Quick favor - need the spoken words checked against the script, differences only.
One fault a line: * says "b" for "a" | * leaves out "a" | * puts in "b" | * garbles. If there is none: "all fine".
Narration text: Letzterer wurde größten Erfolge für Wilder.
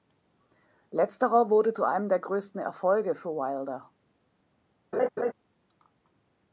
* puts in "zu einem der"